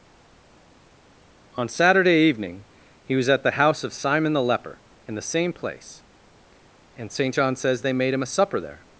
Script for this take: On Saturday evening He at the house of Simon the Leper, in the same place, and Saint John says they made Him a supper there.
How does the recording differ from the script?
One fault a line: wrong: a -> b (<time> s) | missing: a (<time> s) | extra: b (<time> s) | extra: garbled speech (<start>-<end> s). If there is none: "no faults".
extra: was (3.2 s)